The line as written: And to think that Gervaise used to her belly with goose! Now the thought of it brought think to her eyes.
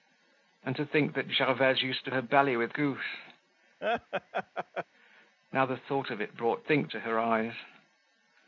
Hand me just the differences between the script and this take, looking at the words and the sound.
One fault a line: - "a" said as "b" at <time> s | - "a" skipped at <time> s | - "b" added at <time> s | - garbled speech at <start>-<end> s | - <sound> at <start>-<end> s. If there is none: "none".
- laugh at 3.8-4.9 s